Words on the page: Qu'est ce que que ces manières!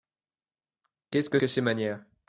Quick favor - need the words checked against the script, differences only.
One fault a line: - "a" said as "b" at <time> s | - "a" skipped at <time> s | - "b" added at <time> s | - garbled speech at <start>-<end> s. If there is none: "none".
none